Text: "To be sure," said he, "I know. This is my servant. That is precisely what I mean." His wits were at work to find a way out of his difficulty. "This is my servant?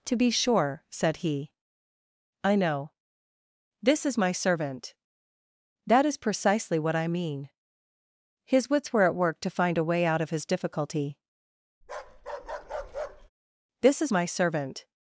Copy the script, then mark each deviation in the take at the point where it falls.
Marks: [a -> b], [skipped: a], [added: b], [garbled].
"To be sure," said he, "I know. This is my servant. That is precisely what I mean." His wits were at work to find a way out of his difficulty. "This is my servant?